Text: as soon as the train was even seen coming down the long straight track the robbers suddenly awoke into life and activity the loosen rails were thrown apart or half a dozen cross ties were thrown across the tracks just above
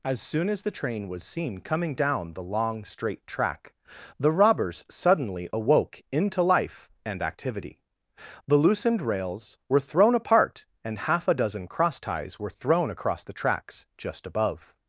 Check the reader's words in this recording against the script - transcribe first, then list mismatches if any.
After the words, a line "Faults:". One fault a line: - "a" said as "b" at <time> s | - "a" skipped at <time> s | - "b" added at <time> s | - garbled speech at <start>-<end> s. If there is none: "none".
as soon as the train was seen coming down the long straight track the robbers suddenly awoke into life and activity the loosened rails were thrown apart and half a dozen cross ties were thrown across the tracks just above
Faults:
- "even" skipped at 1.2 s
- "loosen" said as "loosened" at 8.6 s
- "or" said as "and" at 10.8 s